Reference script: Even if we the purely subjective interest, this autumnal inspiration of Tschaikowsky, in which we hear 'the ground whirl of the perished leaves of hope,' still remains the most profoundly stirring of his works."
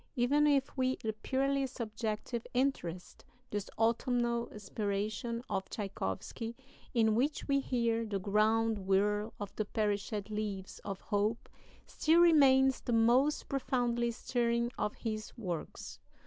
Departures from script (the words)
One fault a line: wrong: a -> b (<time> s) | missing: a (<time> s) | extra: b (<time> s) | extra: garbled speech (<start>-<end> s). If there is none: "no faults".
no faults